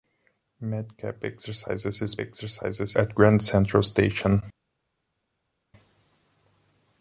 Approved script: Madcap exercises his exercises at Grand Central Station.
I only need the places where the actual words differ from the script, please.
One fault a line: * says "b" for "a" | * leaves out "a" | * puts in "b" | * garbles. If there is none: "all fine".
all fine